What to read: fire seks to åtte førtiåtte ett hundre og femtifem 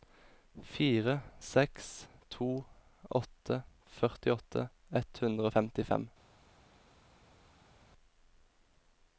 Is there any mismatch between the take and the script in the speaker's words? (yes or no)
no